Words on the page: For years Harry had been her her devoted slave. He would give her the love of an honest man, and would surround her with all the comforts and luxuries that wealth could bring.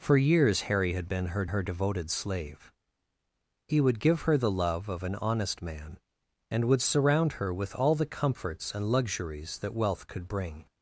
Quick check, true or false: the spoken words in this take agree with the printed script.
true